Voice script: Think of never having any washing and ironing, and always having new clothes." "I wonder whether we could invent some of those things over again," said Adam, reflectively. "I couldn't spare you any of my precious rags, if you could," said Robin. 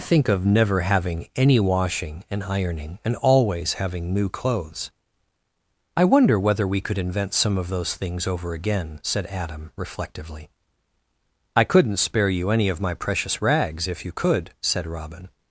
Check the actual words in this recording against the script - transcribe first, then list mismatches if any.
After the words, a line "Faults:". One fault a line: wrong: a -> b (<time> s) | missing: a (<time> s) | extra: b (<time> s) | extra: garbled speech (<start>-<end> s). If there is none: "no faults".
Think of never having any washing and ironing, and always having new clothes." "I wonder whether we could invent some of those things over again," said Adam, reflectively. "I couldn't spare you any of my precious rags, if you could," said Robin.
Faults:
no faults